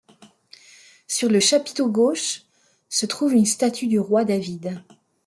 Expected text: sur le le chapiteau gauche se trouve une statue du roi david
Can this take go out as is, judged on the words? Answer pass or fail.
fail